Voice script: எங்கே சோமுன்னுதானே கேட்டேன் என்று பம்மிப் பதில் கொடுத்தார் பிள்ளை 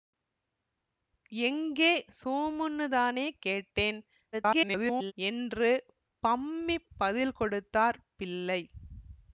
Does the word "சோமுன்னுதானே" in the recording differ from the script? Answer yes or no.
no